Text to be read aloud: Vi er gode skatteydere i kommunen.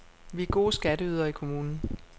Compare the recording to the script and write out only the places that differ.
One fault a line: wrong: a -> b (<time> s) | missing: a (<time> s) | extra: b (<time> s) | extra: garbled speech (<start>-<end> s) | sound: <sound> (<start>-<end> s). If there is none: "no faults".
no faults